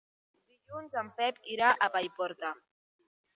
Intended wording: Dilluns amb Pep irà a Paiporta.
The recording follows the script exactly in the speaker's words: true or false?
false